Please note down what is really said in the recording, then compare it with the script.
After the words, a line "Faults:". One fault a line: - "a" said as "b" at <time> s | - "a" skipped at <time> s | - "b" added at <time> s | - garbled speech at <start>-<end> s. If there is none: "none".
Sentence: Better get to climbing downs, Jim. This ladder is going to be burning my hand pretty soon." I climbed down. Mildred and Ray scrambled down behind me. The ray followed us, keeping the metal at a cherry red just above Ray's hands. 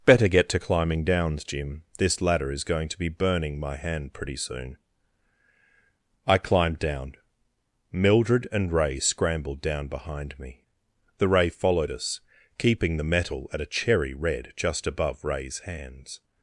Better get to climbing downs, Jim. This ladder is going to be burning my hand pretty soon." I climbed down. Mildred and Ray scrambled down behind me. The ray followed us, keeping the metal at a cherry red just above Ray's hands.
Faults:
none